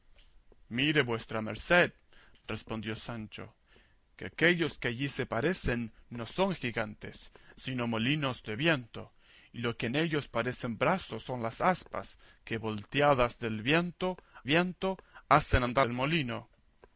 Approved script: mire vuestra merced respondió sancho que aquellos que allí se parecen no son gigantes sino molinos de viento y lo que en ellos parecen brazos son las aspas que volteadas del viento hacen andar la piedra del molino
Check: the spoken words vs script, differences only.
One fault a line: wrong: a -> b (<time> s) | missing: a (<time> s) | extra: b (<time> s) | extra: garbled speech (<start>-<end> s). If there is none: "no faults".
extra: viento (14.4 s)
missing: la piedra (15.9 s)